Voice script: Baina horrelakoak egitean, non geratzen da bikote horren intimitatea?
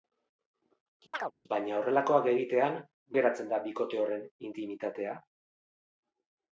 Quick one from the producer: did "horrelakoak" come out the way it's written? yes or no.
yes